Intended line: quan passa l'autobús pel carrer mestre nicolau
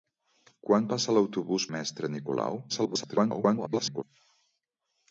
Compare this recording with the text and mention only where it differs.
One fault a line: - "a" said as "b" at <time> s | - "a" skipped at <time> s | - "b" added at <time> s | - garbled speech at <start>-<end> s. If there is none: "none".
- "pel carrer" skipped at 1.7 s
- garbled speech at 2.7-4.0 s